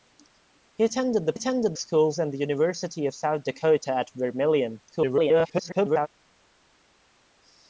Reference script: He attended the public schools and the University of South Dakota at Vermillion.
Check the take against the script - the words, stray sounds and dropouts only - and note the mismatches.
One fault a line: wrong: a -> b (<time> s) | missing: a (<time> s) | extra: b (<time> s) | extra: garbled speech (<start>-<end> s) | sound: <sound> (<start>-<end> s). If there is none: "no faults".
wrong: public -> attended (1.3 s)
extra: garbled speech (4.9-6.1 s)